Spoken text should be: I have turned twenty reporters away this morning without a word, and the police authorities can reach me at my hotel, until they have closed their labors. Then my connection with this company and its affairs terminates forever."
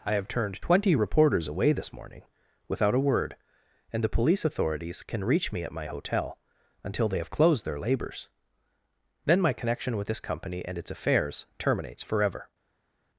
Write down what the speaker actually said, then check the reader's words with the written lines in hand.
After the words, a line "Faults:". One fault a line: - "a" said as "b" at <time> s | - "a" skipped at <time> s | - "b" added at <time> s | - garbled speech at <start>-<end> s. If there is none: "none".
I have turned twenty reporters away this morning without a word, and the police authorities can reach me at my hotel, until they have closed their labors. Then my connection with this company and its affairs terminates forever."
Faults:
none